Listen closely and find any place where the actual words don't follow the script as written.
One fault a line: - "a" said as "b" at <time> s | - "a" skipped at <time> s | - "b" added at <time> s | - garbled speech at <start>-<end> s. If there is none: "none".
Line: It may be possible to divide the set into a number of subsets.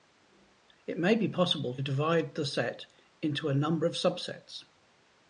- "to" skipped at 1.8 s